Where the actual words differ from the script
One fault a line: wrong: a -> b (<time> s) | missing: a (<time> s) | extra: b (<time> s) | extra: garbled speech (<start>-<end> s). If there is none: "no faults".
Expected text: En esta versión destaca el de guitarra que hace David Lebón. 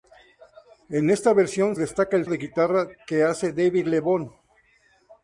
no faults